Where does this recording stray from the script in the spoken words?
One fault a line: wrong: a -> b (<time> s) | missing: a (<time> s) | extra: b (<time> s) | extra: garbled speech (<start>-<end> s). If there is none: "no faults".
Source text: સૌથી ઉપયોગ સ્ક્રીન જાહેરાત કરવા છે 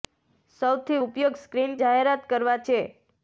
no faults